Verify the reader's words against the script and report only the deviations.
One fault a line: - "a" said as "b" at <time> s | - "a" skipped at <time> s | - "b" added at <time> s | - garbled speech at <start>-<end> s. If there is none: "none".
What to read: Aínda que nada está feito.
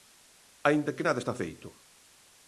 none